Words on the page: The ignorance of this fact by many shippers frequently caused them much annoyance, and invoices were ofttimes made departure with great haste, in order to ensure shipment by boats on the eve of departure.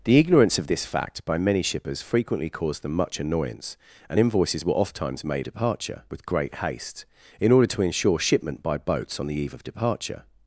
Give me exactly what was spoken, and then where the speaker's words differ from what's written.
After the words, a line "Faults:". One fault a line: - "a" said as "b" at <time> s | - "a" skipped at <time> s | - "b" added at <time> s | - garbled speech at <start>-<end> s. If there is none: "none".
The ignorance of this fact by many shippers frequently caused them much annoyance, and invoices were ofttimes made departure with great haste, in order to ensure shipment by boats on the eve of departure.
Faults:
none